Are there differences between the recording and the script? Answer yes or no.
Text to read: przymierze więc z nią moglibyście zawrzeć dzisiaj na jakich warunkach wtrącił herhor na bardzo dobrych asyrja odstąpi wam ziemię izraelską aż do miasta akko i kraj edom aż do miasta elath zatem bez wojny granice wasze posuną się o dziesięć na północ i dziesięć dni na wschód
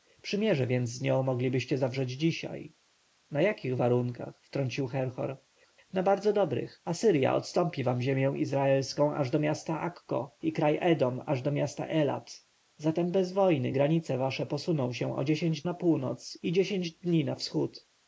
no